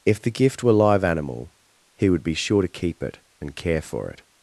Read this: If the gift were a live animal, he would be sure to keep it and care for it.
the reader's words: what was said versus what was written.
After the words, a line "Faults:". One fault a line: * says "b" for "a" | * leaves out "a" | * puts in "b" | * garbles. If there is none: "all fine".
If the gift were live animal, he would be sure to keep it and care for it.
Faults:
* leaves out "a"